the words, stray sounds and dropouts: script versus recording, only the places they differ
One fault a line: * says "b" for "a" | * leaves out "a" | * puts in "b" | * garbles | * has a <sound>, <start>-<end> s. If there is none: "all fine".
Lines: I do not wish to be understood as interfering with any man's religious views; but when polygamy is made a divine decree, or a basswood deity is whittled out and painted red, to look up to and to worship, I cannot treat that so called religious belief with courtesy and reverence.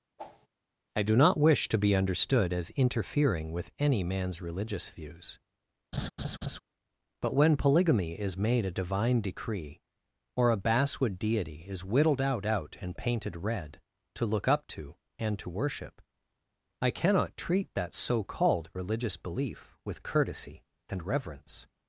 * has a whoosh, 0.2-0.5 s
* has a laugh, 5.9-6.6 s
* puts in "out"